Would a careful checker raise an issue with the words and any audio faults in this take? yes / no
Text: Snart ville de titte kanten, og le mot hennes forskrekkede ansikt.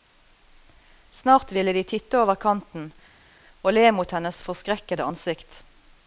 yes